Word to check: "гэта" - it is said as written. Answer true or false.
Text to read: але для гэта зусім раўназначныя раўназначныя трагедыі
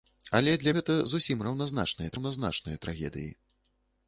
true